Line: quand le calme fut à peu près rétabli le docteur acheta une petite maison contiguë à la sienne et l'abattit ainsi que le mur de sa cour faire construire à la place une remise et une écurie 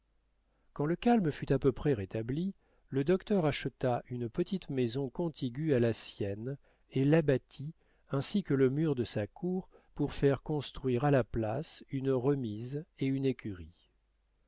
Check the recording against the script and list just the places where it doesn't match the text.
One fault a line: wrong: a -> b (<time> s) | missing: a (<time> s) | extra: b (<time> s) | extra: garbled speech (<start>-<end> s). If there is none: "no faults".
extra: pour (9.9 s)